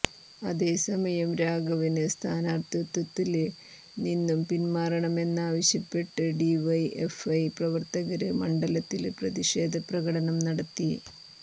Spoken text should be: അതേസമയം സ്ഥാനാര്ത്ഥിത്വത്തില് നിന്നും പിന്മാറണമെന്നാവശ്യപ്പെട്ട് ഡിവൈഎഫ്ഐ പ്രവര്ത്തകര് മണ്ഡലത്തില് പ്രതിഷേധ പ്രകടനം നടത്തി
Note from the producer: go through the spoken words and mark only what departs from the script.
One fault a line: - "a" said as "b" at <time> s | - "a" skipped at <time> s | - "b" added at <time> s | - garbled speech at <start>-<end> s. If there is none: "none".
- "രാഘവന്" added at 1.4 s